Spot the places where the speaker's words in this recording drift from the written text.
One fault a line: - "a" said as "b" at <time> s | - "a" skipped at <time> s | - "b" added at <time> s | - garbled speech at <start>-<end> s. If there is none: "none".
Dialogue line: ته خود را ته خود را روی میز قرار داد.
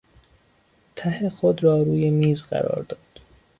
- "ته خود را" skipped at 1.8 s